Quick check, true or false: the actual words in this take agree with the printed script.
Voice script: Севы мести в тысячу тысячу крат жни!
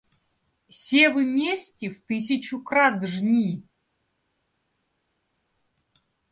false